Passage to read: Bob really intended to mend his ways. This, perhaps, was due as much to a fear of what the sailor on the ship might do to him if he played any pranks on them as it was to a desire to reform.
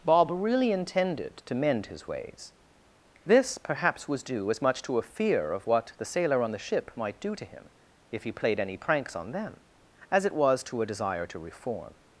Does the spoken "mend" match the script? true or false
true